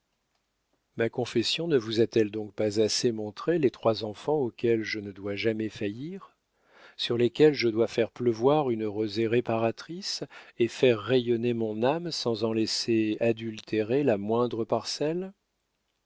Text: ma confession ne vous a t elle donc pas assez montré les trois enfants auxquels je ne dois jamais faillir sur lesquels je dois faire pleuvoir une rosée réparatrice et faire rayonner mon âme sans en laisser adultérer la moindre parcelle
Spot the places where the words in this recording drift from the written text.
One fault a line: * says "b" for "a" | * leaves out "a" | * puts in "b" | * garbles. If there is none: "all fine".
all fine